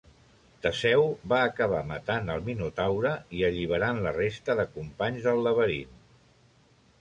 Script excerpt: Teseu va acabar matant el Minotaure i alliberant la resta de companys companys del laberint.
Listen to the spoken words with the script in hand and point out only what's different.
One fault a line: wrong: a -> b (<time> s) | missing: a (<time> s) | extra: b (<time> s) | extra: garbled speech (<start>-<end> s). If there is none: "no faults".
missing: companys (5.3 s)